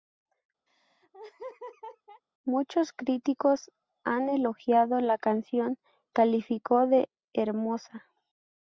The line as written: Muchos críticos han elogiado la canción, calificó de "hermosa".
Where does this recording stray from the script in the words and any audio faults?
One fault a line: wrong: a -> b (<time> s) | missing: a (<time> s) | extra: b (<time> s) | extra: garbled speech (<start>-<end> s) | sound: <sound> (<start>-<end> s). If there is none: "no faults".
sound: laugh (0.7-2.2 s)